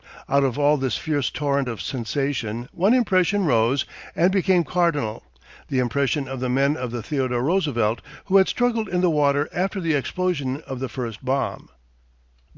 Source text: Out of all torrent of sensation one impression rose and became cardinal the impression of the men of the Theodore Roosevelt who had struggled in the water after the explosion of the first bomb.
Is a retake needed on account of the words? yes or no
yes